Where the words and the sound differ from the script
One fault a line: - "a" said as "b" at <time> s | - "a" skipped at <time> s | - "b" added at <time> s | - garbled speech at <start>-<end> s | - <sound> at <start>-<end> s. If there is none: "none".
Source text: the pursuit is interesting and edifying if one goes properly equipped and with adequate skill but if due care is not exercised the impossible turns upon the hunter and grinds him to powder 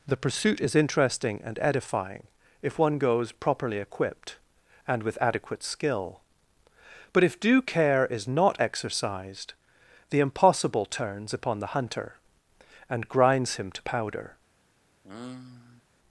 - sigh at 15.0-15.8 s